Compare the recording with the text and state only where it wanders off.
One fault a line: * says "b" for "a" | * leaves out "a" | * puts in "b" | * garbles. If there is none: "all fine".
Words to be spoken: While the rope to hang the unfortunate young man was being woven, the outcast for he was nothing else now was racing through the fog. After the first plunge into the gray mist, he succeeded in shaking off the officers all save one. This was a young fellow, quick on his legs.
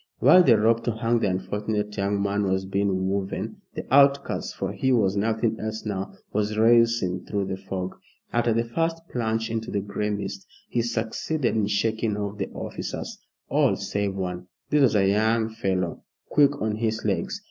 all fine